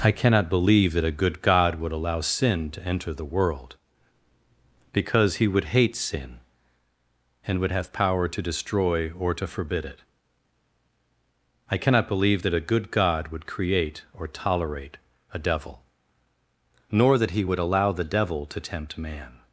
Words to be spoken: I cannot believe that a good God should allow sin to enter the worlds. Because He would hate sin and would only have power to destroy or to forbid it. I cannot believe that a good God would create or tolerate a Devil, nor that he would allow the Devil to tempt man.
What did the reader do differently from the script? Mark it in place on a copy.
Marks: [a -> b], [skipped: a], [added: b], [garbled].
I cannot believe that a good God [should -> would] allow sin to enter the [worlds. -> world] Because He would hate sin and would [skipped: only] have power to destroy or to forbid it. I cannot believe that a good God would create or tolerate a Devil, nor that he would allow the Devil to tempt man.